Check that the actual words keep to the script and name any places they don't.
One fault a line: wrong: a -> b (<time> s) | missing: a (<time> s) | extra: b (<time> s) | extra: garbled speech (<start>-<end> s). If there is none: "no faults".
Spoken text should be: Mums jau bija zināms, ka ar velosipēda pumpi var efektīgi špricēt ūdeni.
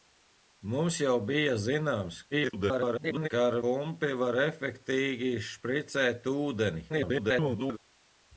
extra: garbled speech (2.3-3.3 s)
missing: velosipēda (3.6 s)
extra: garbled speech (6.9-7.8 s)